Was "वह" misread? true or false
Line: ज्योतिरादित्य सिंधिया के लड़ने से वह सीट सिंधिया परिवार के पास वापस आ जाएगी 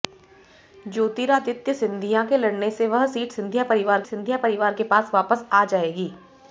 false